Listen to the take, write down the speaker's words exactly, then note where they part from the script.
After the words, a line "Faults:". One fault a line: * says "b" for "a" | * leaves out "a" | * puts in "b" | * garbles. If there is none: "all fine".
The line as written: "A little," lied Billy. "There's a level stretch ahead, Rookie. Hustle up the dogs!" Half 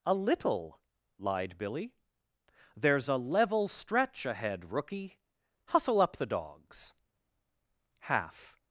"A little," lied Billy. "There's a level stretch ahead, Rookie. Hustle up the dogs!" Half
Faults:
all fine